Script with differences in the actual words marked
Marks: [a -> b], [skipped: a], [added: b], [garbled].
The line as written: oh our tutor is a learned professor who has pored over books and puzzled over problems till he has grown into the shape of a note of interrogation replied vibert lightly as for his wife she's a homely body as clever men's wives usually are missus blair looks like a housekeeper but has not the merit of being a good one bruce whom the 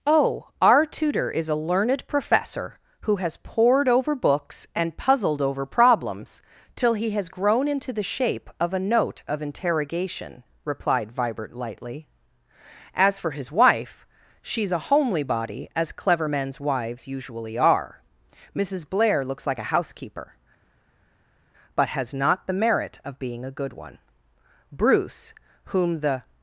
oh our tutor is a learned professor who has pored over books and puzzled over problems till he has grown into the shape of a note of interrogation replied vibert lightly as for his wife she's a homely body as clever men's wives usually are missus blair looks like a housekeeper but has not the merit of being a good one bruce whom the